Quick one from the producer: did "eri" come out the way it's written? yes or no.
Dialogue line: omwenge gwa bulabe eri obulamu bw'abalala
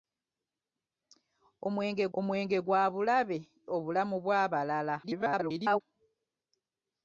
no